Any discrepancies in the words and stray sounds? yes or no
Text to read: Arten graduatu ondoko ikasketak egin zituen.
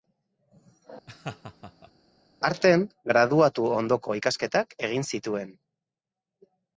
yes